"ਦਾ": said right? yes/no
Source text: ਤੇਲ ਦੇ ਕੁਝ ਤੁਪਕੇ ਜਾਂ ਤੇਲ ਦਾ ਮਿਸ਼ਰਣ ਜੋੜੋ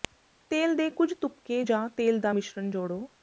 yes